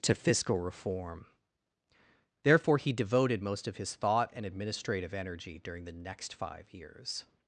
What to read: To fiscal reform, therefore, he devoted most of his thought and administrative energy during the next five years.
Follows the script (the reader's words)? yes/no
yes